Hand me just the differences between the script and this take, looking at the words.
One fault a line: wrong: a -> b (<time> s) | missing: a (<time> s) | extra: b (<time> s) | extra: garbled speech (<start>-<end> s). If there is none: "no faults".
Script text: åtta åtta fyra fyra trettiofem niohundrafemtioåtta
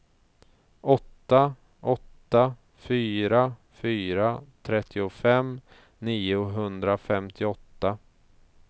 no faults